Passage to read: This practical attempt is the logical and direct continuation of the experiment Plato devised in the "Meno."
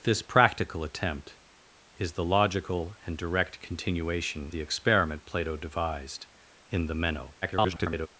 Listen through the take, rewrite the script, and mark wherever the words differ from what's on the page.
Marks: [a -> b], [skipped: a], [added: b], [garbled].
This practical attempt is the logical and direct continuation [skipped: of] the experiment Plato devised in the "Meno." [garbled]